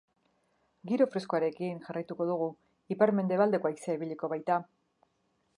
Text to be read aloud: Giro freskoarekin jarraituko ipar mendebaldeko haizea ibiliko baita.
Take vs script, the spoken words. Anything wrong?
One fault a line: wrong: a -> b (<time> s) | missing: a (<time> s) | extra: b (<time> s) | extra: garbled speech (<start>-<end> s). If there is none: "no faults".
extra: dugu (2.3 s)